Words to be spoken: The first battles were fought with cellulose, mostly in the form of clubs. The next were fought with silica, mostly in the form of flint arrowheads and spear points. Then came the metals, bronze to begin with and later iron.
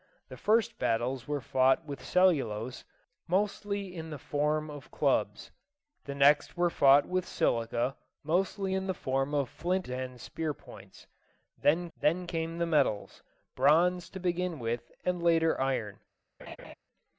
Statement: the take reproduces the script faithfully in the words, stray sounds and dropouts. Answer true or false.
false